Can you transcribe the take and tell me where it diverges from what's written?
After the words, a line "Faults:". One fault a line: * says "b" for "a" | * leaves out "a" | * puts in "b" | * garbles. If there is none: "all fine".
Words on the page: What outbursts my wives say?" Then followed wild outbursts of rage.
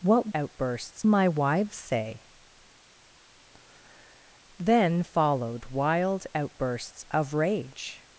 What outbursts my wives say?" Then followed wild outbursts of rage.
Faults:
all fine